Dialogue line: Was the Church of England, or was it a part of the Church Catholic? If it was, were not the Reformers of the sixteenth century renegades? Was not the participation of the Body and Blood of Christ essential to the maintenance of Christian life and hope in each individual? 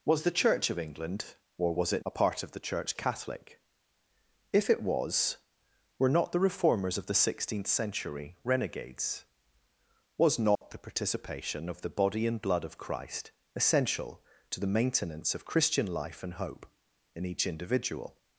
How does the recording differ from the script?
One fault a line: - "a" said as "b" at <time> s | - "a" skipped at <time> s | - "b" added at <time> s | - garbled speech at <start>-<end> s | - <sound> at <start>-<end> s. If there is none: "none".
- dropout at 10.6-10.6 s